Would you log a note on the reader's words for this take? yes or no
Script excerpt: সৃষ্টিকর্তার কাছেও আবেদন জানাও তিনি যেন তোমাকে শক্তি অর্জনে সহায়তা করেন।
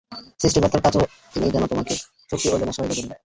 yes